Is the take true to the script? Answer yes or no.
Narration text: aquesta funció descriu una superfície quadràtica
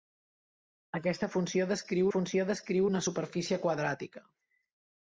no